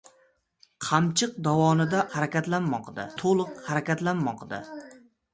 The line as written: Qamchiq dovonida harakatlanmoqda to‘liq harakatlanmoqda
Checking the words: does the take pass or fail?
pass